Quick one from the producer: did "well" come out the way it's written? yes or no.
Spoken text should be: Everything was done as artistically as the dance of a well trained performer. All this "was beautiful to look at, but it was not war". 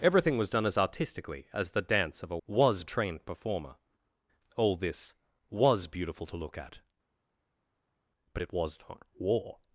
no